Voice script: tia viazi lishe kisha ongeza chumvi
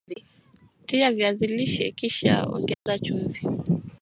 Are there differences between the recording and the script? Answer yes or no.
no